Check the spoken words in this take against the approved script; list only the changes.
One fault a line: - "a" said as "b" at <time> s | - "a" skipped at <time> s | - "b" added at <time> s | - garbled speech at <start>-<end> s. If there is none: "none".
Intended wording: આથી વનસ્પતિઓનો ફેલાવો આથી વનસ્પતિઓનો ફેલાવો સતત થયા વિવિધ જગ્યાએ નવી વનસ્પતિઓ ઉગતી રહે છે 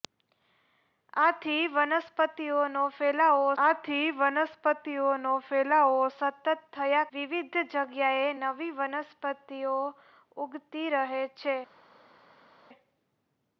none